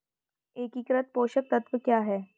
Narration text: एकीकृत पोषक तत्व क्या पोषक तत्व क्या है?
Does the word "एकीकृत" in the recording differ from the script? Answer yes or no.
no